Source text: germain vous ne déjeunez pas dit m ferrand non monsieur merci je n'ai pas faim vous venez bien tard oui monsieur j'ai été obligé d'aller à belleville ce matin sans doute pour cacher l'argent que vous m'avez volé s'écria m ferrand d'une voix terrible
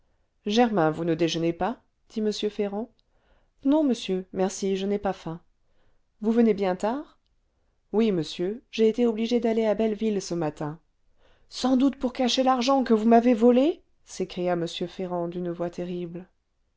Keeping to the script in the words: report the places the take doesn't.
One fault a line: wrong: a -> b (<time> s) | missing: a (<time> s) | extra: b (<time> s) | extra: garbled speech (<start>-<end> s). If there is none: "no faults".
no faults